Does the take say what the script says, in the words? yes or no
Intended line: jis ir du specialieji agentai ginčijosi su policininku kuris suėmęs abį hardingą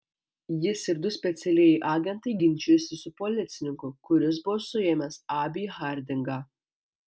no